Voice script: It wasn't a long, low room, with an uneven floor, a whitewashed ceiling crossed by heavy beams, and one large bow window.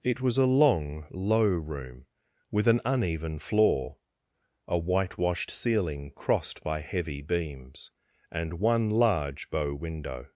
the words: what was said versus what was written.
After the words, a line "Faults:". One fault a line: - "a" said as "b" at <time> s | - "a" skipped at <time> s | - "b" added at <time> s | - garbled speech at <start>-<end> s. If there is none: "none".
It was a long, low room, with an uneven floor, a whitewashed ceiling crossed by heavy beams, and one large bow window.
Faults:
- "wasn't" said as "was" at 0.2 s